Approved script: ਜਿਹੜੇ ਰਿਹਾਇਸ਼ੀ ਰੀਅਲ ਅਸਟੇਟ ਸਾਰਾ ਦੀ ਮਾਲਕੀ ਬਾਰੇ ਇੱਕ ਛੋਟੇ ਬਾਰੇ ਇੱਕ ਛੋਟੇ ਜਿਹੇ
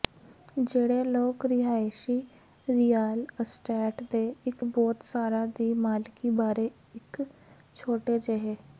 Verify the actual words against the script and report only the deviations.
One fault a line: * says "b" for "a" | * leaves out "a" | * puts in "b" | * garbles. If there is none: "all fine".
* puts in "ਲੋਕ"
* puts in "ਦੇ ਇੱਕ ਬਹੁਤ"
* leaves out "ਬਾਰੇ ਇੱਕ ਛੋਟੇ"